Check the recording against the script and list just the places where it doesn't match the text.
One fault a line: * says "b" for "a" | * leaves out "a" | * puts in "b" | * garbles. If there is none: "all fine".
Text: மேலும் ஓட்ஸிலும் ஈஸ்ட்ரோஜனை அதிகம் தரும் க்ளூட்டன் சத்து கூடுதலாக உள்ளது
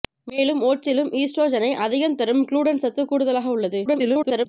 * garbles